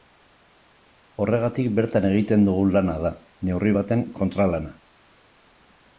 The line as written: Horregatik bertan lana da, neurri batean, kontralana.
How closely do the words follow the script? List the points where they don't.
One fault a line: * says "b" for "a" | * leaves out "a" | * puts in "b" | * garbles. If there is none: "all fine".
* puts in "egiten dugun"